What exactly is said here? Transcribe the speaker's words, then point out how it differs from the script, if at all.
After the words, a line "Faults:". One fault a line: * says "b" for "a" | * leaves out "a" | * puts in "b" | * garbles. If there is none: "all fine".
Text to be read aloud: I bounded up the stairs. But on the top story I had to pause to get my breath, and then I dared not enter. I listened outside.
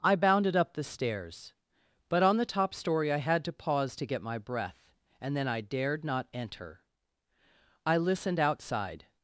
I bounded up the stairs. But on the top story I had to pause to get my breath, and then I dared not enter. I listened outside.
Faults:
all fine